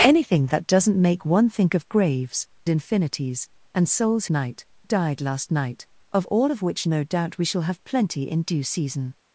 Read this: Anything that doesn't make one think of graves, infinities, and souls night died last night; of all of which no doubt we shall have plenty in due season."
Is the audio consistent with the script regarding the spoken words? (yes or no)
yes